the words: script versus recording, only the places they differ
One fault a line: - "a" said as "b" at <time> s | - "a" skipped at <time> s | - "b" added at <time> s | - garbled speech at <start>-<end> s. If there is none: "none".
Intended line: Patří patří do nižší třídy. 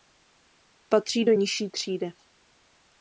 - "patří" skipped at 1.2 s